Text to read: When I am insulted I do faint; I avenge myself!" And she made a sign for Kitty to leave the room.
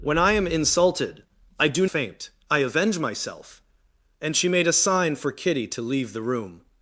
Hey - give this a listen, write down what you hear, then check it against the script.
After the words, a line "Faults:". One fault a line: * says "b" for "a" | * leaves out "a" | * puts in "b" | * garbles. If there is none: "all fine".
When I am insulted I do faint; I avenge myself!" And she made a sign for Kitty to leave the room.
Faults:
all fine